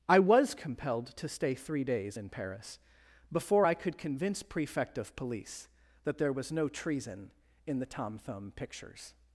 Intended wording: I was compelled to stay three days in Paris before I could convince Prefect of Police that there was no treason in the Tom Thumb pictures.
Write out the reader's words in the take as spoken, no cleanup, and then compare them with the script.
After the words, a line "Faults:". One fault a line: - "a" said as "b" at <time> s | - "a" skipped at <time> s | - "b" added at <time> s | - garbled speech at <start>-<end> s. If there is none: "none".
I was compelled to stay three days in Paris before I could convince Prefect of Police that there was no treason in the Tom Thumb pictures.
Faults:
none